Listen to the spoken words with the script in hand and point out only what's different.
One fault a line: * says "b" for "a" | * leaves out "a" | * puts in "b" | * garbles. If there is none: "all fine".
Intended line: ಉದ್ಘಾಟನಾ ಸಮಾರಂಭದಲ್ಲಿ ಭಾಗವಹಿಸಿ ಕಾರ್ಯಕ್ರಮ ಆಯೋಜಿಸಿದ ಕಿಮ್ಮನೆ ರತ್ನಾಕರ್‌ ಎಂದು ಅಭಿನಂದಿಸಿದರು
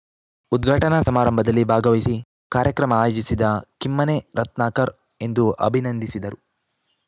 all fine